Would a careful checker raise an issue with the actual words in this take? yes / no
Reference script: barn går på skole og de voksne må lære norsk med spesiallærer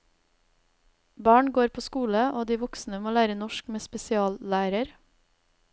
no